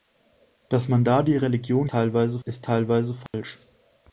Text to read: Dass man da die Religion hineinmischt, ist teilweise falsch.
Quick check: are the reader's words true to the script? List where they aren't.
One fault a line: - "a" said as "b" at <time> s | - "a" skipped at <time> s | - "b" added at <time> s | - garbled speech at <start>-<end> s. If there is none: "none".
- "hineinmischt" said as "teilweise" at 1.9 s